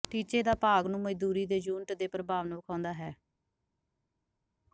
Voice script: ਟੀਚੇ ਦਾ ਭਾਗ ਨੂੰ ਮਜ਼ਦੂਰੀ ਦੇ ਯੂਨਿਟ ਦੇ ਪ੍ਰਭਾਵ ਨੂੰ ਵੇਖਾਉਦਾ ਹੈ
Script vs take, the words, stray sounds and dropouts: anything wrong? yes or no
no